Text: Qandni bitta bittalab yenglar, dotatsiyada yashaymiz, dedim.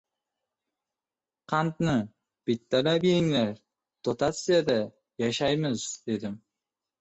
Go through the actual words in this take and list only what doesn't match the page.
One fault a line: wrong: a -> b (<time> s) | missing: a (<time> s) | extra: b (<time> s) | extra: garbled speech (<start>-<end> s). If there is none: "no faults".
missing: bitta (1.9 s)